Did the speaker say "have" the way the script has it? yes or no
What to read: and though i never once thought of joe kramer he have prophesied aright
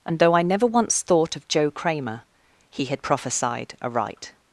no